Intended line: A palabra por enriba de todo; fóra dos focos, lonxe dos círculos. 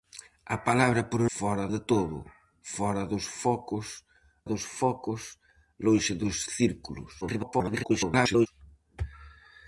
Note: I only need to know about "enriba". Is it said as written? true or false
false